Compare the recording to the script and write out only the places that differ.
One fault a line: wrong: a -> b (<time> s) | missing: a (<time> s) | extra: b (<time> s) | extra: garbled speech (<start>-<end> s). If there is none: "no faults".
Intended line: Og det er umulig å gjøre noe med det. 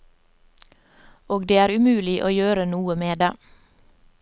no faults